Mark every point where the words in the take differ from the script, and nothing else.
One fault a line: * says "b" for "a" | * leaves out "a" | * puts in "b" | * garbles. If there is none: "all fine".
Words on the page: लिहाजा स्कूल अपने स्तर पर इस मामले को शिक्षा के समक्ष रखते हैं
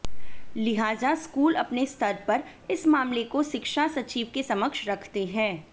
* puts in "सचिव"